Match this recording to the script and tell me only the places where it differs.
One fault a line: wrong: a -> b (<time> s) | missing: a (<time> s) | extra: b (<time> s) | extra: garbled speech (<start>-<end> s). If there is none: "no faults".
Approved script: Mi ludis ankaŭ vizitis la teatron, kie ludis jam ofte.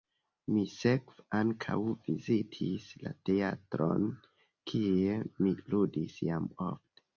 wrong: ludis -> sekve (0.8 s)
extra: mi (5.4 s)